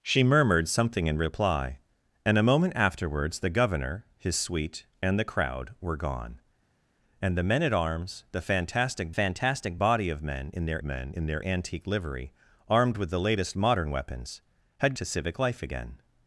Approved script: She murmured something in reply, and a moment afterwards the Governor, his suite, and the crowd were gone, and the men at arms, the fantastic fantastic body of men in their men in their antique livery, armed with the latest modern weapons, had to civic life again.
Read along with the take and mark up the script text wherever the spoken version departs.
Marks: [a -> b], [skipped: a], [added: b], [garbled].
She murmured something in reply, and a moment afterwards the Governor, his suite, and the crowd were gone, and the men at arms, the fantastic fantastic body of men in their men in their antique livery, armed with the latest modern weapons, had to civic life again.